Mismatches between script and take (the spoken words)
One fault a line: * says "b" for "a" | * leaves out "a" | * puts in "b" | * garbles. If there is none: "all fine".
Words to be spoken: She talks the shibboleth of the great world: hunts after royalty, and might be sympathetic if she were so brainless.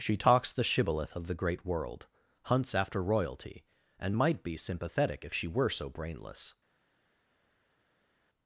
all fine